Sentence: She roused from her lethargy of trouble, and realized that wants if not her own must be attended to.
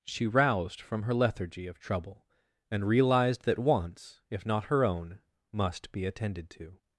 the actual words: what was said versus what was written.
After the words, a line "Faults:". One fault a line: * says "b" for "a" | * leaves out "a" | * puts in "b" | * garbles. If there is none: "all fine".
She roused from her lethargy of trouble, and realized that wants if not her own must be attended to.
Faults:
all fine